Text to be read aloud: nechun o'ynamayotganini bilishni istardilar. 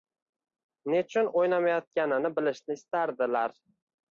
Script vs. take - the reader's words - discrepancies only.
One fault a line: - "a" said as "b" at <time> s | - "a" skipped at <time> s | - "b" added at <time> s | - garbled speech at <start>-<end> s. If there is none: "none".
none